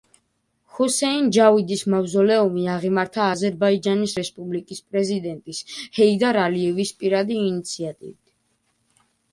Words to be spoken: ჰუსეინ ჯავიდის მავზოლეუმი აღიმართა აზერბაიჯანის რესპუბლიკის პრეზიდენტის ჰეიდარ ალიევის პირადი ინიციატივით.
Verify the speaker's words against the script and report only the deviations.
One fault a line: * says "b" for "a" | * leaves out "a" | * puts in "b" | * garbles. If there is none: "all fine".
all fine